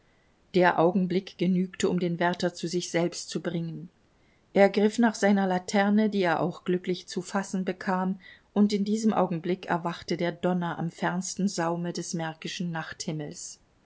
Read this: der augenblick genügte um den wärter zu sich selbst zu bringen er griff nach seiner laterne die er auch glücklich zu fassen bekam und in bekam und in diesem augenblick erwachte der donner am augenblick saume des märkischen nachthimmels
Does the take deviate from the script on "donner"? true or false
false